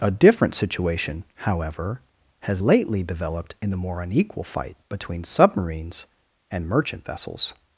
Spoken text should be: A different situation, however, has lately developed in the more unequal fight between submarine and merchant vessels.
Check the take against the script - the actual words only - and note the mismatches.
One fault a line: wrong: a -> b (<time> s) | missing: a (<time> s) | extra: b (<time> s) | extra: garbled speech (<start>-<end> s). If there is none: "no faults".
wrong: submarine -> submarines (5.2 s)